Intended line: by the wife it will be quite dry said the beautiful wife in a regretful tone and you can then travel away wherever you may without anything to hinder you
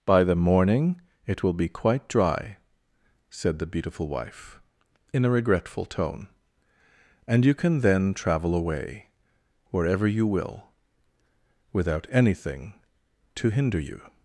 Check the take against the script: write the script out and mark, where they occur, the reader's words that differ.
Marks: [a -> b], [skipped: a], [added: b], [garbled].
by the [wife -> morning] it will be quite dry said the beautiful wife in a regretful tone and you can then travel away wherever you [may -> will] without anything to hinder you